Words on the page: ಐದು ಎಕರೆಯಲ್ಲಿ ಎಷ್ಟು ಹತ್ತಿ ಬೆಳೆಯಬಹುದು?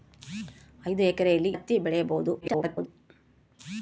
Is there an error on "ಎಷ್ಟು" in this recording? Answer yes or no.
yes